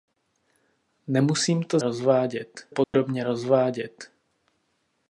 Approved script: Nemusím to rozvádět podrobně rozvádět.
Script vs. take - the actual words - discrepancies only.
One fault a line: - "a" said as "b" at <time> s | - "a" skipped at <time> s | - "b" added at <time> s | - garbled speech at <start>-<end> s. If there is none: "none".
none